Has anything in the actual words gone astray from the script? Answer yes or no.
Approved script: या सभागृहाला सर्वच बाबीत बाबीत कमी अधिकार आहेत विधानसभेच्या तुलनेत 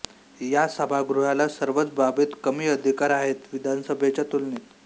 yes